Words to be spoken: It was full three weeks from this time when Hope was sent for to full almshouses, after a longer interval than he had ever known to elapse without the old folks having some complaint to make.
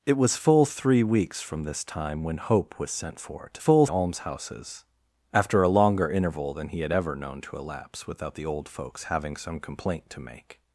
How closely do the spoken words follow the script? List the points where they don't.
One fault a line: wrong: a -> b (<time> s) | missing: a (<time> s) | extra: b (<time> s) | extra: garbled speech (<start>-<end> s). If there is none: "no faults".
no faults